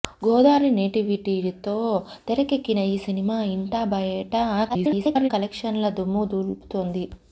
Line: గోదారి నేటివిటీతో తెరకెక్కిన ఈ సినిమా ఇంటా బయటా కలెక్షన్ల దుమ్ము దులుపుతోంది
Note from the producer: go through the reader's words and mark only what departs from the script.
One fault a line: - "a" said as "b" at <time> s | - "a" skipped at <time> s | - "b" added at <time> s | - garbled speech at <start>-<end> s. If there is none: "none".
- garbled speech at 4.7-5.3 s